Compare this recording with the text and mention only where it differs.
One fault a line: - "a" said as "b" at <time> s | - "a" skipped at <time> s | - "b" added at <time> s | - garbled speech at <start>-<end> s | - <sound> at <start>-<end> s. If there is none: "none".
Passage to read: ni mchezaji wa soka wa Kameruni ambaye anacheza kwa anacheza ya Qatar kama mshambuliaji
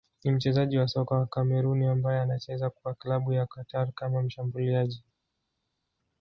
- "anacheza" said as "klabu" at 2.9 s